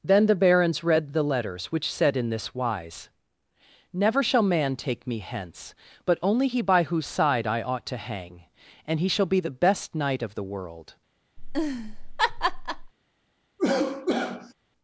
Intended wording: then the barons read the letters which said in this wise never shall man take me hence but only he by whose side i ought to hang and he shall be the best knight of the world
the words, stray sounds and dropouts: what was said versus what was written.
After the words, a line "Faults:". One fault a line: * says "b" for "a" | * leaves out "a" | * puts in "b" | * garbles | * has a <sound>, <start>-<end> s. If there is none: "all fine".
then the barons read the letters which said in this wise never shall man take me hence but only he by whose side i ought to hang and he shall be the best knight of the world
Faults:
* has a laugh, 11.4-12.9 s
* has a cough, 13.6-14.5 s